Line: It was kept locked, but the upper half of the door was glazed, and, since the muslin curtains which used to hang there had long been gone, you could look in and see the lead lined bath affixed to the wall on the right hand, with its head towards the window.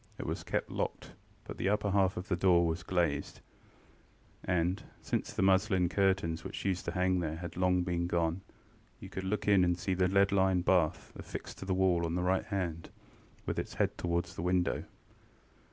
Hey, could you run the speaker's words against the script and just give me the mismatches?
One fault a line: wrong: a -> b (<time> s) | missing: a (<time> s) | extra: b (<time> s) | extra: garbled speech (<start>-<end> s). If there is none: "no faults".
no faults